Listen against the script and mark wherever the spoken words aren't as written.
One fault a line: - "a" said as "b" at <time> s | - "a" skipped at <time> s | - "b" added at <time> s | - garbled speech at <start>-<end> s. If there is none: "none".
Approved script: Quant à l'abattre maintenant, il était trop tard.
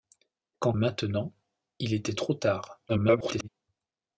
- "à l'abattre" skipped at 0.7 s
- garbled speech at 2.9-3.5 s